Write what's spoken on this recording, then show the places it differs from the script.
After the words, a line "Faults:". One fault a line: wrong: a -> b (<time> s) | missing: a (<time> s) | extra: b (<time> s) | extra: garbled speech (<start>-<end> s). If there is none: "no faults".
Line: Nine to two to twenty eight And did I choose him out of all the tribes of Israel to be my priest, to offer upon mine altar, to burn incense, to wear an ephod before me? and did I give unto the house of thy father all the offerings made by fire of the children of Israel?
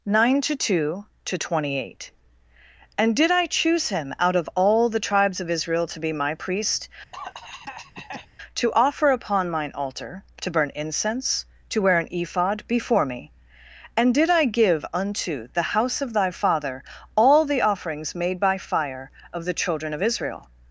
Nine to two to twenty eight And did I choose him out of all the tribes of Israel to be my priest, to offer upon mine altar, to burn incense, to wear an ephod before me? and did I give unto the house of thy father all the offerings made by fire of the children of Israel?
Faults:
no faults